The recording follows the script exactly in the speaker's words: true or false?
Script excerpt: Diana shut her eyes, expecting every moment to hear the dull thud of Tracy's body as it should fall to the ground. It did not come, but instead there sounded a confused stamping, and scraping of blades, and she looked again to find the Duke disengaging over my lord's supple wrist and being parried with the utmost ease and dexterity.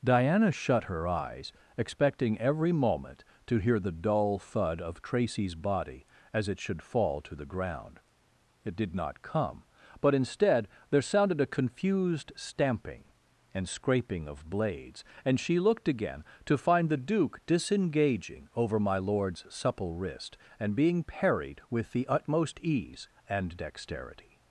true